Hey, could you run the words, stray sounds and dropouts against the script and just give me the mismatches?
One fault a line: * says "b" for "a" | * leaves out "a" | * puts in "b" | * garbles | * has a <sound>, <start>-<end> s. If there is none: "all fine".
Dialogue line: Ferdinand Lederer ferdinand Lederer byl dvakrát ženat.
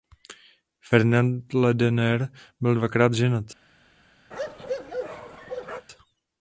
* leaves out "ferdinand Lederer"
* has a bark, 4.3-5.9 s